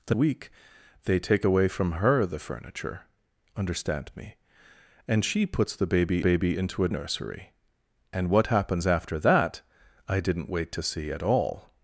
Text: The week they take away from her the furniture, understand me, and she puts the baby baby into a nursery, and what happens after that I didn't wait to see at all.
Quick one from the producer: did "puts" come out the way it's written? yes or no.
yes